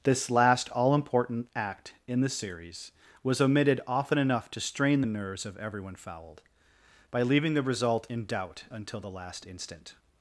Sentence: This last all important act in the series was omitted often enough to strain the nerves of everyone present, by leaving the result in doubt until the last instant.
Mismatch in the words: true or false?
true